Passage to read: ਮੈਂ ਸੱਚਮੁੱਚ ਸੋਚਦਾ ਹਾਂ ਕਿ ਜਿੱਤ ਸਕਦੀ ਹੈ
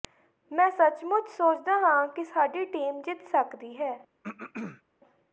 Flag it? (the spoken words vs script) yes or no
yes